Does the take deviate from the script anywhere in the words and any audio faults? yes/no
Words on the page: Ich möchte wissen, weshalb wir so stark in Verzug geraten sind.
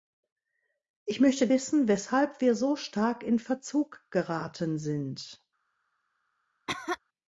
yes